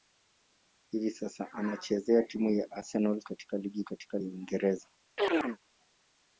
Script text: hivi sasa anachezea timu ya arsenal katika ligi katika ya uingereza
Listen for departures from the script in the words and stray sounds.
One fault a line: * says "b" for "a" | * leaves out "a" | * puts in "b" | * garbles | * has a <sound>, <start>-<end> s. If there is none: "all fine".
* has a chirp, 5.2-5.6 s